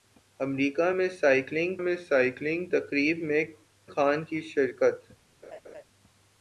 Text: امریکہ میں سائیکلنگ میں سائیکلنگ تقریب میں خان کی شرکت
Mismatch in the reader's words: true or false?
false